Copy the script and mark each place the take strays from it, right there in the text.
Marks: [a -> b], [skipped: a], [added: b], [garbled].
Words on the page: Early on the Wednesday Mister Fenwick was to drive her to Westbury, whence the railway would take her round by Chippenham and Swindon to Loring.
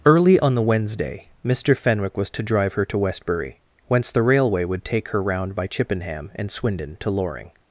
Early on the Wednesday Mister Fenwick was to drive her to Westbury, whence the railway would take her round by Chippenham and Swindon to Loring.